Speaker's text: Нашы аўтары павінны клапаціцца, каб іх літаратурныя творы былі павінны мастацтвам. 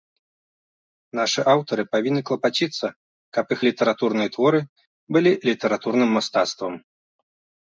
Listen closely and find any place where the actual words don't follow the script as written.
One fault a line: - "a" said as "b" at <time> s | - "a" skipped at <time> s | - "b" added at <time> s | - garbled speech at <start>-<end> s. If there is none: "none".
- "павінны" said as "літаратурным" at 5.5 s